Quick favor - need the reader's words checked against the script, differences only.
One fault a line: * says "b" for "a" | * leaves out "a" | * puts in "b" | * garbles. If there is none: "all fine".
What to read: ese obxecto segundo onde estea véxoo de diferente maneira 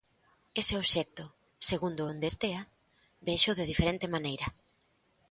all fine